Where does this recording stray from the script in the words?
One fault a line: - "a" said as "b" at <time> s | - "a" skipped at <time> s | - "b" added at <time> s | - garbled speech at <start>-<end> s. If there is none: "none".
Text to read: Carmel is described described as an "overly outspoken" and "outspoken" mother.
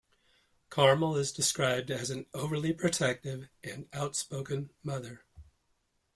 - "described" skipped at 1.9 s
- "outspoken" said as "protective" at 2.7 s